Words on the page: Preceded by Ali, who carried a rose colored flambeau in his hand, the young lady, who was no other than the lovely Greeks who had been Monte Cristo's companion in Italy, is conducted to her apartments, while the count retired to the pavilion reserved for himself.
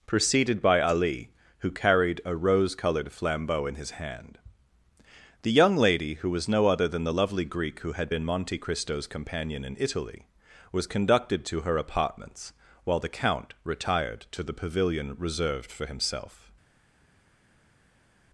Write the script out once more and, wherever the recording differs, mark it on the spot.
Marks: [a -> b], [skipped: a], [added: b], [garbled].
Preceded by Ali, who carried a rose colored flambeau in his hand, the young lady, who was no other than the lovely [Greeks -> Greek] who had been Monte Cristo's companion in Italy, [is -> was] conducted to her apartments, while the count retired to the pavilion reserved for himself.